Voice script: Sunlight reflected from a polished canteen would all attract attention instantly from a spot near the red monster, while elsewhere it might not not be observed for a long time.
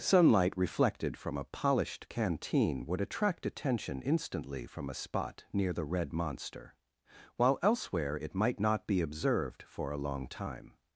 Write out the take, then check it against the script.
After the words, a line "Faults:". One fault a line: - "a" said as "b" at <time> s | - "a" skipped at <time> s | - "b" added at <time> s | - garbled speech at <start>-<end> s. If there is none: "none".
Sunlight reflected from a polished canteen would attract attention instantly from a spot near the red monster, while elsewhere it might not be observed for a long time.
Faults:
- "all" skipped at 3.0 s
- "not" skipped at 8.9 s